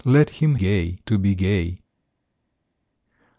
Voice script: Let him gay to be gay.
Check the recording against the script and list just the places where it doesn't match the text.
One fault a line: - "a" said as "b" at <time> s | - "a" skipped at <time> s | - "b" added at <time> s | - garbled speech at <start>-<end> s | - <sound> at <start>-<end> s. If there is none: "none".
none